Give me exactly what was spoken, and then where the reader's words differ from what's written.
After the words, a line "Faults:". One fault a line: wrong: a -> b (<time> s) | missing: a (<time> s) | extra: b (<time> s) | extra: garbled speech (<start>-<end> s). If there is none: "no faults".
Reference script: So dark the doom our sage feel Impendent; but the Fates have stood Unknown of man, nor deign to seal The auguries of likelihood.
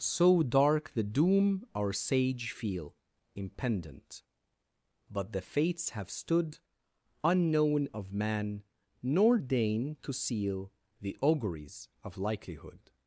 So dark the doom our sage feel Impendent; but the Fates have stood Unknown of man, nor deign to seal The auguries of likelihood.
Faults:
no faults